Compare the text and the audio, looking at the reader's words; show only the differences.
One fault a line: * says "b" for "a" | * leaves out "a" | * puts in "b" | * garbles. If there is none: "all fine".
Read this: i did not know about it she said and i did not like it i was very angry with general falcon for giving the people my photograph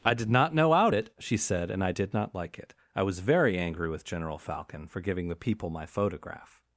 * says "out" for "about"